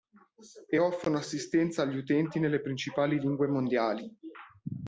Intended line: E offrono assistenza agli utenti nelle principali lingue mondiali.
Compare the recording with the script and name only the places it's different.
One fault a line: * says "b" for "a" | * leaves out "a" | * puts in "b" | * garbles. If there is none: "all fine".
all fine